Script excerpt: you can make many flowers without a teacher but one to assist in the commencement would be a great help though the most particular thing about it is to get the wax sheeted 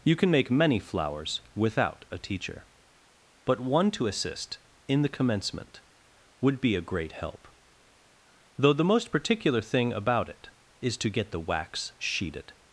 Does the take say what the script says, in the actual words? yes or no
yes